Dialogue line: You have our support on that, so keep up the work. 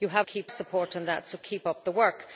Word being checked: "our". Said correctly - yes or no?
no